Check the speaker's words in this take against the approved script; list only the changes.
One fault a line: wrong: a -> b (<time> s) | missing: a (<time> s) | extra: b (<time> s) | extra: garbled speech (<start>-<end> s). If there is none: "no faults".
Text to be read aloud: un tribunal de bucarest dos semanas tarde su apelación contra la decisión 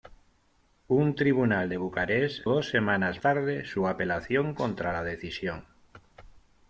no faults